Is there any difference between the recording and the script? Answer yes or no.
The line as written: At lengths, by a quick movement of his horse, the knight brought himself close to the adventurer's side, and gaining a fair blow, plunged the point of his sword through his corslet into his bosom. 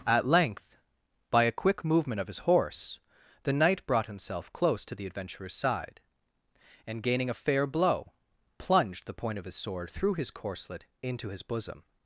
yes